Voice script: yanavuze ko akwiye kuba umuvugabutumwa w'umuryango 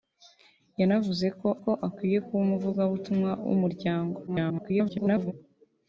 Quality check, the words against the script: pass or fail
fail